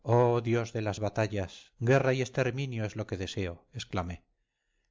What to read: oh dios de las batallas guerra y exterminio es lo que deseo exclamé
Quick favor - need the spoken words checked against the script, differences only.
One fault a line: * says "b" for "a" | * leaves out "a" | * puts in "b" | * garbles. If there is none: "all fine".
all fine